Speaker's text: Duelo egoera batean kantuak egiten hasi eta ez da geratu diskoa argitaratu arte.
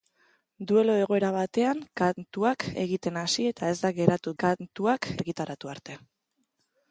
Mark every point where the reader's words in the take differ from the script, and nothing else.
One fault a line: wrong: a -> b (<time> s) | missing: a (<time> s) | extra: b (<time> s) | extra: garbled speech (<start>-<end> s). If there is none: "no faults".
wrong: diskoa -> kantuak (4.4 s)